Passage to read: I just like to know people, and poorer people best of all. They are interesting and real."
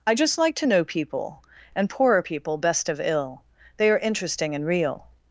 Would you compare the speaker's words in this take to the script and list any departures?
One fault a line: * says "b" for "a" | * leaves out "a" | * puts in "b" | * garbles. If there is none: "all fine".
* says "ill" for "all"